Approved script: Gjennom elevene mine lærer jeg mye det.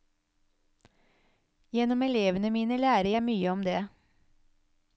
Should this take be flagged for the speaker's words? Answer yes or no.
yes